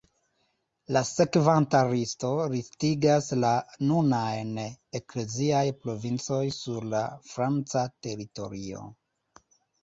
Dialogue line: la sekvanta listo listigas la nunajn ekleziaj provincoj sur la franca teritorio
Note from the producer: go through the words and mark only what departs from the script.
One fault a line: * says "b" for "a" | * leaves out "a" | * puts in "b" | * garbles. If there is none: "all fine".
all fine